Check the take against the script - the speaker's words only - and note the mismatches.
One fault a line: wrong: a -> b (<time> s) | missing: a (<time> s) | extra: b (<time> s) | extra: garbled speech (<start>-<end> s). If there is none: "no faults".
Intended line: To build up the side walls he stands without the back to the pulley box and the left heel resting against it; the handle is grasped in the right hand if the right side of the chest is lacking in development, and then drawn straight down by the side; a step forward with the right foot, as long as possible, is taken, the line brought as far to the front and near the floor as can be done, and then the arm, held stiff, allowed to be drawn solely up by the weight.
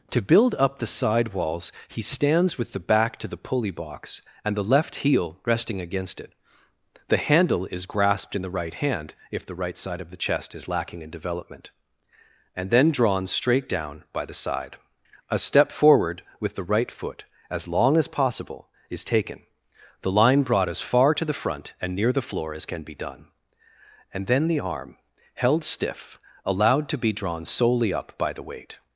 wrong: without -> with (2.6 s)